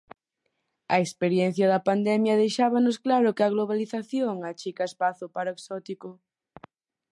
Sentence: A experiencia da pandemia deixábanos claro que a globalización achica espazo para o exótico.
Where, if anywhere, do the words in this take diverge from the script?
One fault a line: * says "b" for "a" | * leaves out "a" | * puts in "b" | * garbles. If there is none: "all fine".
all fine